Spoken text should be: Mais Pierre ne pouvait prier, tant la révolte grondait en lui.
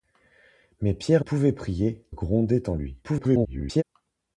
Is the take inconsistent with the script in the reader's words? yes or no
yes